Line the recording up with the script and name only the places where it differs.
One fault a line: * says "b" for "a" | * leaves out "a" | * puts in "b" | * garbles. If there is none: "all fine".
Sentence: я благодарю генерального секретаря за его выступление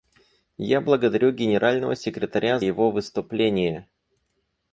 * leaves out "за"